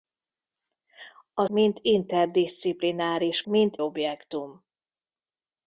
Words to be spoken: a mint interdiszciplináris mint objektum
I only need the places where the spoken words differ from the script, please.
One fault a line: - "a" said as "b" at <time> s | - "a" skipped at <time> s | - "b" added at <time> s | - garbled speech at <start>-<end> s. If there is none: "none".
none